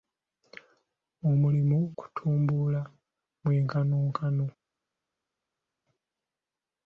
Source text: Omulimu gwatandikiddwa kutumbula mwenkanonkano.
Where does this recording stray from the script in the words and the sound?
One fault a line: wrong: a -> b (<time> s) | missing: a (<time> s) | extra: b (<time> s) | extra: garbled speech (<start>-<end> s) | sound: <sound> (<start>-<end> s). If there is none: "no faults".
missing: gwatandikiddwa (1.8 s)